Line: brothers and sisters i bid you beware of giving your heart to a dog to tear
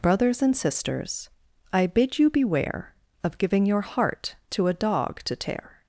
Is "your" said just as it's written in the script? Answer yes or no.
yes